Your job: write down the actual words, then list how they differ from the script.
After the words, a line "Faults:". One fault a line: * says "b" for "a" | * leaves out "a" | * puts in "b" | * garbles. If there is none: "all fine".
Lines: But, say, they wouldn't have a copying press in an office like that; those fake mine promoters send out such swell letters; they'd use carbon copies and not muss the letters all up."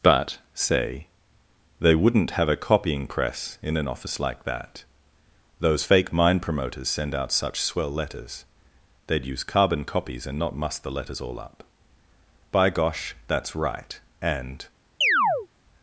But, say, they wouldn't have a copying press in an office like that; those fake mine promoters send out such swell letters; they'd use carbon copies and not muss the letters all up." "By gosh, that's right!" and
Faults:
* puts in "By gosh that's right and"